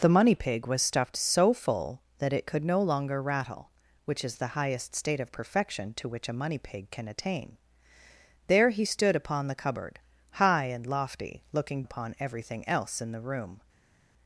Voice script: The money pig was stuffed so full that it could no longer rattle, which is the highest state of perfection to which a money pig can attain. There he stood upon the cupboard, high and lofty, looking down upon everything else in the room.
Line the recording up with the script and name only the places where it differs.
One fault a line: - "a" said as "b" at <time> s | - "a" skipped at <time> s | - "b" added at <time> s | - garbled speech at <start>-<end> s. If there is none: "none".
- "down" skipped at 11.8 s